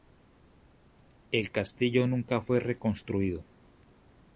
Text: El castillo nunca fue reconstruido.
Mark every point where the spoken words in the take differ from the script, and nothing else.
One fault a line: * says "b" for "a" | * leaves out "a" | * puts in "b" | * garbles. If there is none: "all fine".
all fine